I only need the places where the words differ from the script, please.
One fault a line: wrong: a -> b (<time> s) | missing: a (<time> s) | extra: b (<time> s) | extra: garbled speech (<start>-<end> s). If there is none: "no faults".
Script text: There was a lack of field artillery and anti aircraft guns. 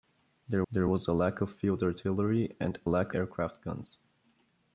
extra: there (0.7 s)
wrong: anti -> lack (2.9 s)